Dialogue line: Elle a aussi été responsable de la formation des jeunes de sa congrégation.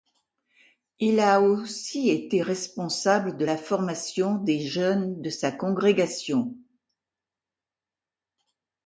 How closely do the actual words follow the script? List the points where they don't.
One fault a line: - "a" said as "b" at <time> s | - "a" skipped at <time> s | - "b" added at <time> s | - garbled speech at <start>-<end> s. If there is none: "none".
- "Elle" said as "Il" at 1.0 s